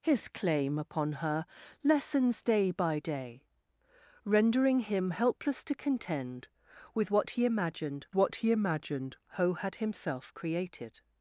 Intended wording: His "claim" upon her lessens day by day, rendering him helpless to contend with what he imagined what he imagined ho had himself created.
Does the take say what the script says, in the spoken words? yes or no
yes